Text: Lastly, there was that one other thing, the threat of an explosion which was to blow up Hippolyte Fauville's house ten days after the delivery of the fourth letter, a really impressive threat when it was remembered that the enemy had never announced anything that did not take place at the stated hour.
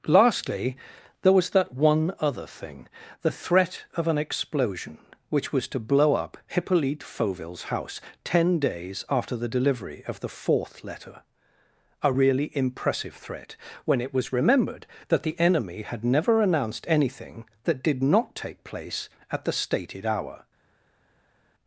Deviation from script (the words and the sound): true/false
false